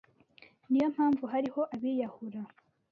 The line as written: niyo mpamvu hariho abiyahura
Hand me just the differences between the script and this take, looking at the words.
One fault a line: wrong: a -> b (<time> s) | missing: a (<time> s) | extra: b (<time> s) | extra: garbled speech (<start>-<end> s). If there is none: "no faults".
no faults